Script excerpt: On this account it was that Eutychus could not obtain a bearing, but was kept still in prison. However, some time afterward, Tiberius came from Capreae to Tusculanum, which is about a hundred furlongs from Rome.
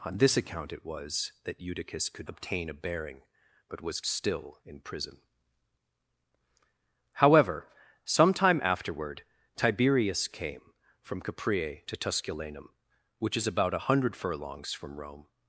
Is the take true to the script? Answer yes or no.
no